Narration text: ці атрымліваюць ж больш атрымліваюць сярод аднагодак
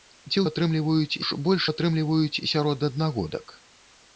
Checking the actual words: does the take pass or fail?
pass